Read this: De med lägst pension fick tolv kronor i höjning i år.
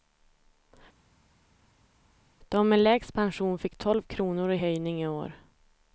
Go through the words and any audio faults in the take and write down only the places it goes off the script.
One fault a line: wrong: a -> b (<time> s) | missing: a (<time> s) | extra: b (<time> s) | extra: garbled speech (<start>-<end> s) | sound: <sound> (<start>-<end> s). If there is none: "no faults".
no faults